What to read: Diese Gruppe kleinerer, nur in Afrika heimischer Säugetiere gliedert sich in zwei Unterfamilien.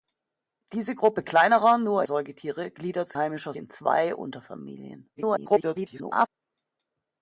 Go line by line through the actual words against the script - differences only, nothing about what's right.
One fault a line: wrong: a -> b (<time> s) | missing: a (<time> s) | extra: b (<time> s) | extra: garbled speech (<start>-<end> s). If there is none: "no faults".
missing: in Afrika heimischer (2.0 s)
wrong: sich -> heimischer (3.1 s)
extra: garbled speech (5.2-6.3 s)